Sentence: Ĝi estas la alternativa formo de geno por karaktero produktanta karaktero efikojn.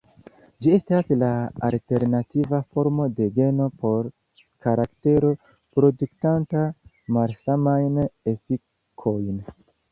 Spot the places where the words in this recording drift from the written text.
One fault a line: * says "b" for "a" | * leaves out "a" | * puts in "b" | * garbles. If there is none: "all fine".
* says "malsamajn" for "karaktero"